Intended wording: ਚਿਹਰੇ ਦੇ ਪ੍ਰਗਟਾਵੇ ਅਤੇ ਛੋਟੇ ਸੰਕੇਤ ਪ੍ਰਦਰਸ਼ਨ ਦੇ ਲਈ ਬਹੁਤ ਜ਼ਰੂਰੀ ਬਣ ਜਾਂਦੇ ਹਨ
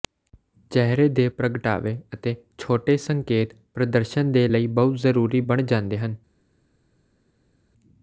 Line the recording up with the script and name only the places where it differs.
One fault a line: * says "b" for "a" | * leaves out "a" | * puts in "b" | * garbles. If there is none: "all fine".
all fine